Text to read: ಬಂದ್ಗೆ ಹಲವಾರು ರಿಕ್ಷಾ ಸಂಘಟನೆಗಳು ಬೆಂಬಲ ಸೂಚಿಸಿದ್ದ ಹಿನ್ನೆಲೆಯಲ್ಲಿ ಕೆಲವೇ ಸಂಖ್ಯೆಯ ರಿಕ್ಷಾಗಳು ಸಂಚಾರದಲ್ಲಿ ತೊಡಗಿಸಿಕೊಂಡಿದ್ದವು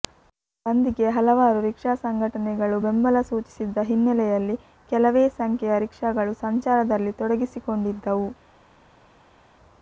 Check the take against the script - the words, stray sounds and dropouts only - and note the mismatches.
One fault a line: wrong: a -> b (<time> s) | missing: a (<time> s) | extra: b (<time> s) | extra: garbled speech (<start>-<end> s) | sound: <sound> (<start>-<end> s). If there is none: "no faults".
no faults